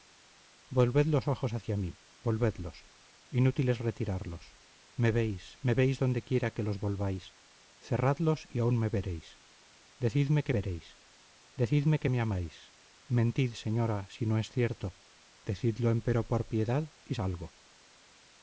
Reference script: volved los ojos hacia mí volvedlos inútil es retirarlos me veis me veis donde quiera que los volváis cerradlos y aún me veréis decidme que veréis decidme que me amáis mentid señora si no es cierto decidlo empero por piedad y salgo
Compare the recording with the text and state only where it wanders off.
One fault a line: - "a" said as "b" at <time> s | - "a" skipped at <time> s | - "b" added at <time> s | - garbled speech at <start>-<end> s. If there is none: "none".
none